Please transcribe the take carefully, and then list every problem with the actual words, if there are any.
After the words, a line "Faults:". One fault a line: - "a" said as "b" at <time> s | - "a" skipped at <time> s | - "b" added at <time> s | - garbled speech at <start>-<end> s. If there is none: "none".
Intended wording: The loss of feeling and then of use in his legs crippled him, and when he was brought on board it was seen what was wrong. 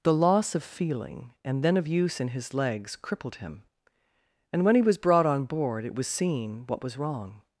The loss of feeling and then of use in his legs crippled him, and when he was brought on board it was seen what was wrong.
Faults:
none